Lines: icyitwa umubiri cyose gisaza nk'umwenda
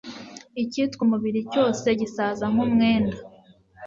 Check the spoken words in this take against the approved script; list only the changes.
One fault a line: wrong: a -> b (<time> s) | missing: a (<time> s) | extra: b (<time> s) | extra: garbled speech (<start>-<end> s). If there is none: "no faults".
no faults